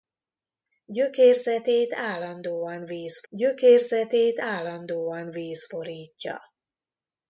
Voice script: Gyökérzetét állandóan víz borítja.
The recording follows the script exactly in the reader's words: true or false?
false